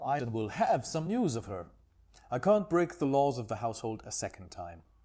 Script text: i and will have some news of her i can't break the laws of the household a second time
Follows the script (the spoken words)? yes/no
yes